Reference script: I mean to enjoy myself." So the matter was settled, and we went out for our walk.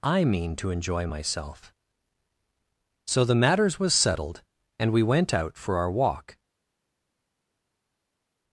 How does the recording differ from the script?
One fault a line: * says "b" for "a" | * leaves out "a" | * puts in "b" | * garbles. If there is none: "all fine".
* says "matters" for "matter"